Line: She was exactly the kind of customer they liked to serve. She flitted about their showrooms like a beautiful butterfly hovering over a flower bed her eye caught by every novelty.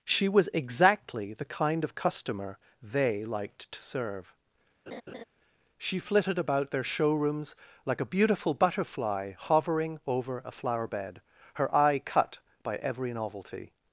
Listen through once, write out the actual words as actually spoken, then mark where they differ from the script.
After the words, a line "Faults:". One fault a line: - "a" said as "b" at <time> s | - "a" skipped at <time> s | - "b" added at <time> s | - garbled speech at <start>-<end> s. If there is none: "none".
She was exactly the kind of customer they liked to serve. She flitted about their showrooms like a beautiful butterfly hovering over a flower bed her eye cut by every novelty.
Faults:
- "caught" said as "cut" at 12.0 s